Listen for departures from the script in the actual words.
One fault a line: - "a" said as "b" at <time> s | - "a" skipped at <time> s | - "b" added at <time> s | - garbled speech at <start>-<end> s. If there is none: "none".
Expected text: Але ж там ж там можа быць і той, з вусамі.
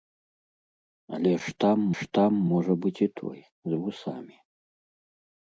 none